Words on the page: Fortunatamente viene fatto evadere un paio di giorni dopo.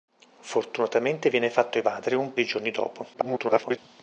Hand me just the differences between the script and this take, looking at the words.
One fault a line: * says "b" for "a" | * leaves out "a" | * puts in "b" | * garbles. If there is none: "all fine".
* leaves out "paio"
* garbles